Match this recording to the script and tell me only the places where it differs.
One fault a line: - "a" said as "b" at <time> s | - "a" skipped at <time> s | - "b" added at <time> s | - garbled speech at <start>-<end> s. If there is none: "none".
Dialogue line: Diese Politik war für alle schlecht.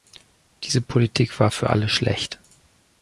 none